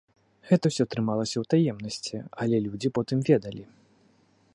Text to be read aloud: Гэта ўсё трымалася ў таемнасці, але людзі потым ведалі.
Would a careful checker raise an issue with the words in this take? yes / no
no